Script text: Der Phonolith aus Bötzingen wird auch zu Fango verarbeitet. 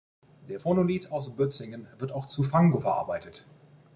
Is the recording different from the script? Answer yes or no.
no